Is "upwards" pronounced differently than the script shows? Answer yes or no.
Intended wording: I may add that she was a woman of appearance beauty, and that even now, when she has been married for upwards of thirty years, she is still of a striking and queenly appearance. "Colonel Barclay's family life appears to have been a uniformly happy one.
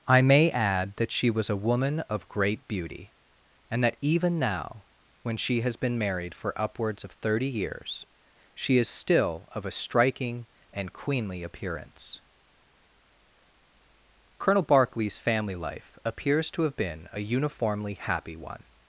no